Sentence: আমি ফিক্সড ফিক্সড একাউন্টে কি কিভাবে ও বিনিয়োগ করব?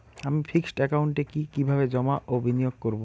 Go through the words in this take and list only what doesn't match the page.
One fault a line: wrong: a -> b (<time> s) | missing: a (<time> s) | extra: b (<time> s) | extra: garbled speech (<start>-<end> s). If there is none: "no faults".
missing: ফিক্সড (0.8 s)
extra: জমা (1.9 s)